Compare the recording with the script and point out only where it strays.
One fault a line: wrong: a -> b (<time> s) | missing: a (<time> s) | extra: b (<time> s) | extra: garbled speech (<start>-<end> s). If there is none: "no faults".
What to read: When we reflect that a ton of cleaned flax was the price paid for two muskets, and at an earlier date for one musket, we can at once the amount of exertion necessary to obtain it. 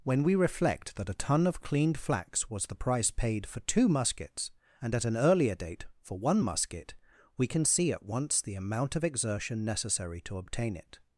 extra: see (7.6 s)